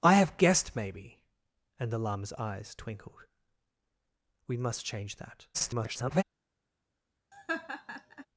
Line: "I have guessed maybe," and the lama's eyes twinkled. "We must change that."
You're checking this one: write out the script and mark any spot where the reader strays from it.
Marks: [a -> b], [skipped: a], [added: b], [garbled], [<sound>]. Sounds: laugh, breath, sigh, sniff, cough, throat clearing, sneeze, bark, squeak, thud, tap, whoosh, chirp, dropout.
"I have guessed maybe," and the lama's eyes twinkled. "We must change that." [garbled] [laugh]